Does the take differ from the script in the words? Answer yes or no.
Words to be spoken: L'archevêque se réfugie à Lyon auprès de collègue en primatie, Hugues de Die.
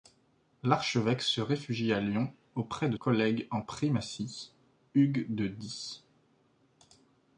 no